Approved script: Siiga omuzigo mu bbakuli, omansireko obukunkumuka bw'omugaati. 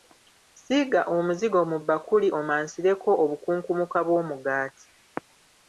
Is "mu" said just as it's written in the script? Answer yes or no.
yes